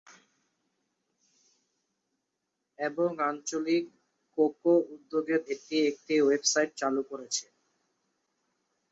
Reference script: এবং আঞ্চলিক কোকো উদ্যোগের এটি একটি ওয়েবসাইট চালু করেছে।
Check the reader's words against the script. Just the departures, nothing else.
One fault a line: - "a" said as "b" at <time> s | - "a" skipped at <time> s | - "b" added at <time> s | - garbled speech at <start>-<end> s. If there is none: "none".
none